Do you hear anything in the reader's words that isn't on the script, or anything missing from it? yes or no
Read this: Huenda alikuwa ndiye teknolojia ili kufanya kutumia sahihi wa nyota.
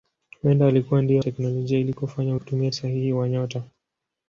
no